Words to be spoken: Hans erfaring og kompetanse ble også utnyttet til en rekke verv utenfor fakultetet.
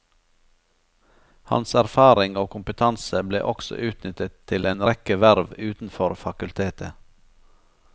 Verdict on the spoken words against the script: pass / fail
pass